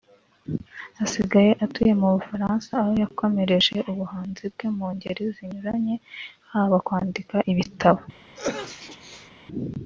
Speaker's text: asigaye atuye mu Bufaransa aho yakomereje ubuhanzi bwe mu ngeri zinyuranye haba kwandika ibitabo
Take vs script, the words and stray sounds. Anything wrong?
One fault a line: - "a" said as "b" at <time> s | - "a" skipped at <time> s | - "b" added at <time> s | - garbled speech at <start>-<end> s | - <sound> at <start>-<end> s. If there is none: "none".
- sneeze at 8.4-9.3 s